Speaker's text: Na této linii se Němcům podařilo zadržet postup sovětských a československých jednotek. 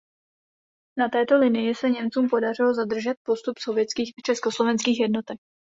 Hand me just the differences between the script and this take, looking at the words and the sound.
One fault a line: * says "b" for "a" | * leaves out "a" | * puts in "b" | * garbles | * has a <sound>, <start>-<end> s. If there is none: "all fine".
all fine